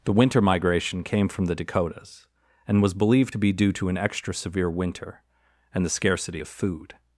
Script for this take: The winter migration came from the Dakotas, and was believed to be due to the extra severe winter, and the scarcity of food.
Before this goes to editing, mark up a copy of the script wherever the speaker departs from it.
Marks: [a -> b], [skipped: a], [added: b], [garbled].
The winter migration came from the Dakotas, and was believed to be due to [the -> an] extra severe winter, and the scarcity of food.